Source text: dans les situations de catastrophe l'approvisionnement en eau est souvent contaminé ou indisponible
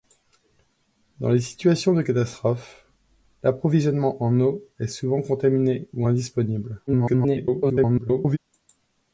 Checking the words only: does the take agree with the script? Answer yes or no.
no